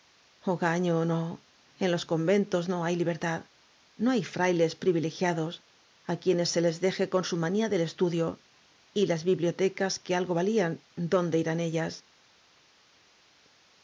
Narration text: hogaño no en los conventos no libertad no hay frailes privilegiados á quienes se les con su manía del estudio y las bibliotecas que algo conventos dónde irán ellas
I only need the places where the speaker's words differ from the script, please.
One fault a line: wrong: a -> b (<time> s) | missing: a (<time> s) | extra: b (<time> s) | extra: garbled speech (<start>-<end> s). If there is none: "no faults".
extra: hay (2.9 s)
extra: deje (6.8 s)
wrong: conventos -> valían (10.3 s)